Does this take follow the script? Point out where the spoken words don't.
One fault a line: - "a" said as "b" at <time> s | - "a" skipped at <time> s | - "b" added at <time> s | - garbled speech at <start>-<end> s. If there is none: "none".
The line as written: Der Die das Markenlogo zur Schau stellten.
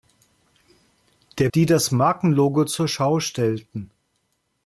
none